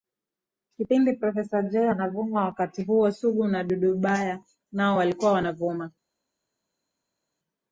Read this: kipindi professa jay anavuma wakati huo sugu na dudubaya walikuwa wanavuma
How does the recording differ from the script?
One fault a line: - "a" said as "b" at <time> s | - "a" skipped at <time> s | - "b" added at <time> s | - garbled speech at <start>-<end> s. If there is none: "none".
- "nao" added at 4.7 s